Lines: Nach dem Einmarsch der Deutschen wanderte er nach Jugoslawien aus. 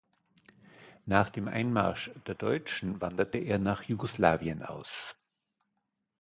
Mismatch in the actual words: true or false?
false